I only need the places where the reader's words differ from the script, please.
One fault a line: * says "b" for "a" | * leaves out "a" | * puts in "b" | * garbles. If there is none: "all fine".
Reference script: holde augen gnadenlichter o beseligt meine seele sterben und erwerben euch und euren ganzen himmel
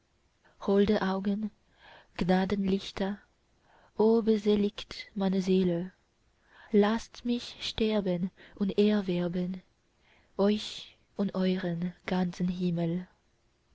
* puts in "laßt mich"